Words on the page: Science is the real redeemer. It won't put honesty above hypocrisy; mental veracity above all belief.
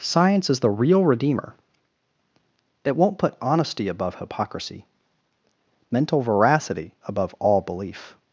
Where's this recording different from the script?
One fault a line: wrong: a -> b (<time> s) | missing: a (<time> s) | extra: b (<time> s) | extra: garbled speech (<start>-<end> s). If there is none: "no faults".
no faults